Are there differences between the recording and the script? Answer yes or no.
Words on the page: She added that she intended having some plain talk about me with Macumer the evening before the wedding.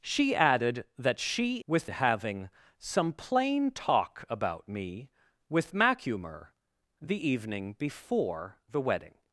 yes